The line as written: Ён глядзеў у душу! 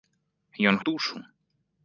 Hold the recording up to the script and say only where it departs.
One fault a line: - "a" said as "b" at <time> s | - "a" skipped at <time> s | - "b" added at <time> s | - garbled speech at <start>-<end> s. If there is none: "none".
- "глядзеў" skipped at 0.8 s